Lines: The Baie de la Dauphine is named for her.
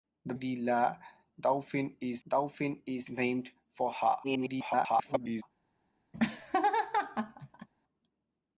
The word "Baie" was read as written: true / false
false